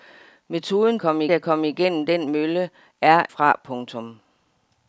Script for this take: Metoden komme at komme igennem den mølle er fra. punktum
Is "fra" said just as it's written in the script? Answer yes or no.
yes